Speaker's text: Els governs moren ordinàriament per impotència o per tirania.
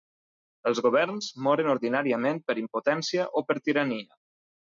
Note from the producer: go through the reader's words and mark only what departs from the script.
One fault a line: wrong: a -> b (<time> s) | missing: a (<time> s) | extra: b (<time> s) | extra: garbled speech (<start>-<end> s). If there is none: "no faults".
no faults